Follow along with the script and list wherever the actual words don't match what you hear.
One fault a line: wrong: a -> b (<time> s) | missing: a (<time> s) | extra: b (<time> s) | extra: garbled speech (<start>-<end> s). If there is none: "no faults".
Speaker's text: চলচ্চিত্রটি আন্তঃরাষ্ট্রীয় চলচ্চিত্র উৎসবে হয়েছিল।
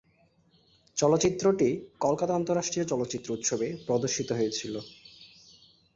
extra: কলকাতা (2.0 s)
extra: প্রদর্শিত (3.9 s)